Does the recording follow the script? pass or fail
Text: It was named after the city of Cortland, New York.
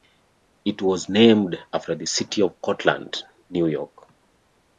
pass